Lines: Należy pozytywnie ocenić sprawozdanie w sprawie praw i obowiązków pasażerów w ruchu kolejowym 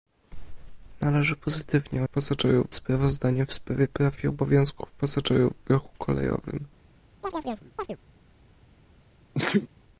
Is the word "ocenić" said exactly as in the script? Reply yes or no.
no